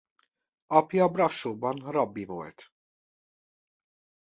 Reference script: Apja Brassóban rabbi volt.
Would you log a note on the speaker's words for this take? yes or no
no